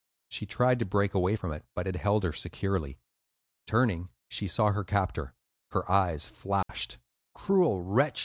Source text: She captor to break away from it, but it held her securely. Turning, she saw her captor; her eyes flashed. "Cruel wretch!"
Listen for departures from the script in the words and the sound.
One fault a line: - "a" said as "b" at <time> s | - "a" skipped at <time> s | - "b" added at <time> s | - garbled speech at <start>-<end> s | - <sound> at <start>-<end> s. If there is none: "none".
- "captor" said as "tried" at 0.5 s
- dropout at 6.6-6.7 s